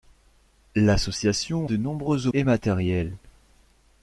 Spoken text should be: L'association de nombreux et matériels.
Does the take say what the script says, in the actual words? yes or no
yes